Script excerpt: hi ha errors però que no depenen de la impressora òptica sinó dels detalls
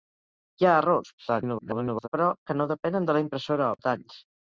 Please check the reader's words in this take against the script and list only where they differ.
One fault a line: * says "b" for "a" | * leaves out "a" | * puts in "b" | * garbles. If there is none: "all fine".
* garbles
* leaves out "òptica sinó dels"